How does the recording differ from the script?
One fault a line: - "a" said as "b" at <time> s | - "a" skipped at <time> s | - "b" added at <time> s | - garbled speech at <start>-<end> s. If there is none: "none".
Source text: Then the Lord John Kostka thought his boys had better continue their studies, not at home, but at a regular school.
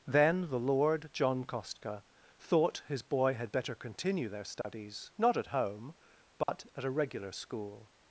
- "boys" said as "boy" at 3.0 s